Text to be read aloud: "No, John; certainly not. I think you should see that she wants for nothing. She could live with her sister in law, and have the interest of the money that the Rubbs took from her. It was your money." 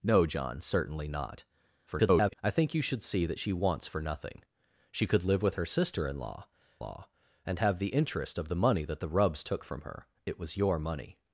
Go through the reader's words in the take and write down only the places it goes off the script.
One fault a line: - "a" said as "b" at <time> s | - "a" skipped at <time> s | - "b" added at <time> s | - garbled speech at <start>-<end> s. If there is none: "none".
- garbled speech at 1.9-2.4 s
- "law" added at 6.8 s